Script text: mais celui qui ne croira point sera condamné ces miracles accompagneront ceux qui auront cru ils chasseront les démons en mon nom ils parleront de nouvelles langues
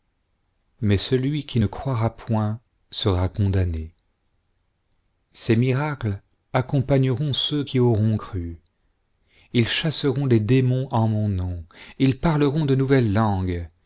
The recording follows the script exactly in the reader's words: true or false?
true